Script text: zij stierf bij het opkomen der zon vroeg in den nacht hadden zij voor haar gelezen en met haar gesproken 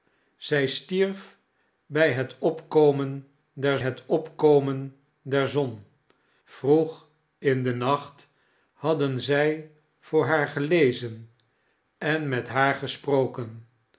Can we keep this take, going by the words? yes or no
no